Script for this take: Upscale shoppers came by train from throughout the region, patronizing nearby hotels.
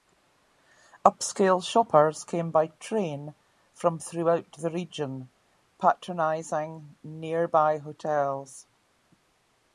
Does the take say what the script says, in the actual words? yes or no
yes